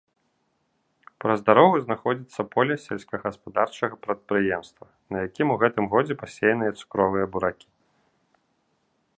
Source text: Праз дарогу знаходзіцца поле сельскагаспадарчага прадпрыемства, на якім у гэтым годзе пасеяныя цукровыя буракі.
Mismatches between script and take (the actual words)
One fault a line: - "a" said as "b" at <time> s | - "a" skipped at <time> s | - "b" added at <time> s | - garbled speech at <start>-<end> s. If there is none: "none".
none